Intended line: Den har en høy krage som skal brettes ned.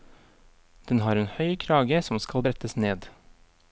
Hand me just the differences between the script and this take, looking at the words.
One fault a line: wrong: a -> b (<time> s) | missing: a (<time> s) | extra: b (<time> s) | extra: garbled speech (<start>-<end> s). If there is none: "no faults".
no faults